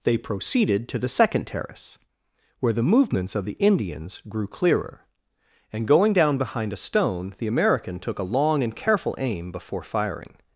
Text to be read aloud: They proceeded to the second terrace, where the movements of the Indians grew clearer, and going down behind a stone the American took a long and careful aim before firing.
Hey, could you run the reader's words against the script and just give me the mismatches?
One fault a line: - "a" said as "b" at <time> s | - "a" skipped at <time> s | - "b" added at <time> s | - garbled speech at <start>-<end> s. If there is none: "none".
none